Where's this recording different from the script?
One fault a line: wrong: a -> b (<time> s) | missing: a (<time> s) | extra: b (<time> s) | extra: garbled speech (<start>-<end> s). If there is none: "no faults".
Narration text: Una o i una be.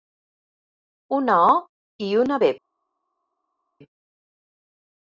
no faults